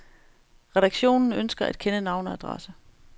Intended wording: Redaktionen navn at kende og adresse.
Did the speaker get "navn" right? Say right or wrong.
wrong